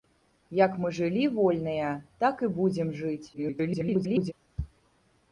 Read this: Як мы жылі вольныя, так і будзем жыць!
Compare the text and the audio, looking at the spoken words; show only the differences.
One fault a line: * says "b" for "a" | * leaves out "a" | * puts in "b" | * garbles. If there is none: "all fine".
* garbles